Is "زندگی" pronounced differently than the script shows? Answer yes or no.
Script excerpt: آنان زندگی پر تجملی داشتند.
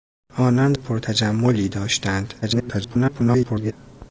yes